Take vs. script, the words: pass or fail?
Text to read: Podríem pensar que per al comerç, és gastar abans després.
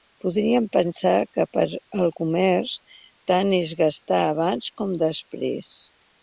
fail